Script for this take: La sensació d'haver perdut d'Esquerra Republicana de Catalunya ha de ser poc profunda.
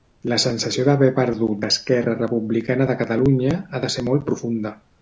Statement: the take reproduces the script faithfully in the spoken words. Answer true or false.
false